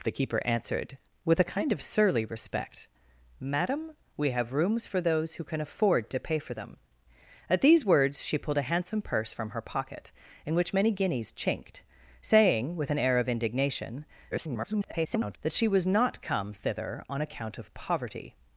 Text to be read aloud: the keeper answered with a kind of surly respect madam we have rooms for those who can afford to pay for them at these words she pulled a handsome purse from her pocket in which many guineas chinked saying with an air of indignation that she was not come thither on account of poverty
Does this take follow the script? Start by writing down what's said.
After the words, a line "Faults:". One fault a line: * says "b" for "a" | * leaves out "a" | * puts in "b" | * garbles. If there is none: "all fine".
the keeper answered with a kind of surly respect madam we have rooms for those who can afford to pay for them at these words she pulled a handsome purse from her pocket in which many guineas chinked saying with an air of indignation [garbled] that she was not come thither on account of poverty
Faults:
* garbles